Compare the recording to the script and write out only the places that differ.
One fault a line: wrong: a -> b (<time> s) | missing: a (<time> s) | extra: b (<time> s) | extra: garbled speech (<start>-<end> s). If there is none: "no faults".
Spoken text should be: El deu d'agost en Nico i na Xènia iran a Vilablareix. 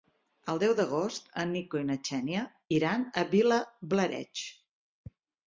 no faults